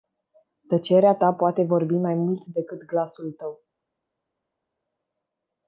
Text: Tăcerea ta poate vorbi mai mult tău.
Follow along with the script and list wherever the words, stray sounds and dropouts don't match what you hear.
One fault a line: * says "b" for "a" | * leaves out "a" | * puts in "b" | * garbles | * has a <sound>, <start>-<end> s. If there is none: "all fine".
* puts in "decât glasul"